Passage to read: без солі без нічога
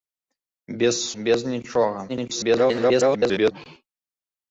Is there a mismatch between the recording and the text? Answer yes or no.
yes